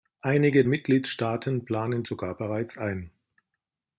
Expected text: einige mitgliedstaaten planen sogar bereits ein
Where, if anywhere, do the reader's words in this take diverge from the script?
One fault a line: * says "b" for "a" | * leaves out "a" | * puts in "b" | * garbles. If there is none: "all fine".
all fine